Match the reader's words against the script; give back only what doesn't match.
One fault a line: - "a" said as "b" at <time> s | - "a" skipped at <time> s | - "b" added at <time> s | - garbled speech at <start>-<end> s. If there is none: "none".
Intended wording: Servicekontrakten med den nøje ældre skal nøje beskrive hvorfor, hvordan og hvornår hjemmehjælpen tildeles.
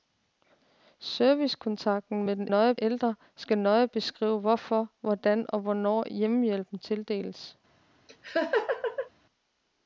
none